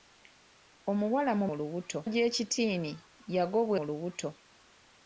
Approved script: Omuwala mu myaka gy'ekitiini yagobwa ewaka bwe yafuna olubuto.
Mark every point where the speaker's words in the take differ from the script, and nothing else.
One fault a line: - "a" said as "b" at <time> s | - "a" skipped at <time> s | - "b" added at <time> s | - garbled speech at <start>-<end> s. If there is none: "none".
- "myaka" said as "olubuto" at 1.5 s
- "ewaka bwe yafuna" skipped at 3.8 s